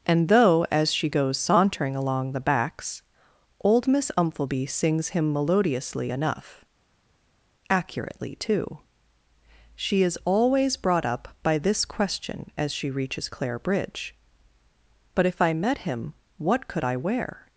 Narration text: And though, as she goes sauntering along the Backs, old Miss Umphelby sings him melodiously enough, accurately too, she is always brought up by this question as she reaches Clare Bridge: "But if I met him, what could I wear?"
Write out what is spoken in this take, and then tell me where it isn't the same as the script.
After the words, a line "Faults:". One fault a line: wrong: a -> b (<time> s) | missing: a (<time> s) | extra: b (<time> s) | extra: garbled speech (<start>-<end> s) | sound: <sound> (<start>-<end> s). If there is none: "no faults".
And though, as she goes sauntering along the Backs, old Miss Umphelby sings him melodiously enough, accurately too, she is always brought up by this question as she reaches Clare Bridge: "But if I met him, what could I wear?"
Faults:
no faults